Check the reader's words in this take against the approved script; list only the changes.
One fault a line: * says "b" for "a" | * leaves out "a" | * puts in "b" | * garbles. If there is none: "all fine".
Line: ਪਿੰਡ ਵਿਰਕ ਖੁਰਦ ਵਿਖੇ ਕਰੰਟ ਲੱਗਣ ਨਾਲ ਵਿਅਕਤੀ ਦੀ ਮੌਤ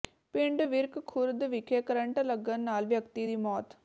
all fine